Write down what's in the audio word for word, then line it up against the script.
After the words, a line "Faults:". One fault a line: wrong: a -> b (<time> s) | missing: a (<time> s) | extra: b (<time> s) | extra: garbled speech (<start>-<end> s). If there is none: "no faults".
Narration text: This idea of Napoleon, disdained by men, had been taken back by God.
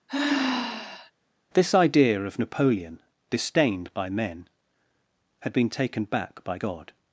This idea of Napoleon, disdained by men, had been taken back by God.
Faults:
no faults